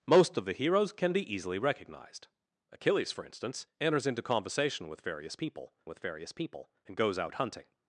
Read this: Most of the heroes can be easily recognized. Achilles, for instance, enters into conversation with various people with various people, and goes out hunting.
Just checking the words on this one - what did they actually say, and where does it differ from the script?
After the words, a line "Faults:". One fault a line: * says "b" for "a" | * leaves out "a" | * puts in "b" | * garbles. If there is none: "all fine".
Most of the heroes can be easily recognized. Achilles, for instance, enters into conversation with various people with various people, and goes out hunting.
Faults:
all fine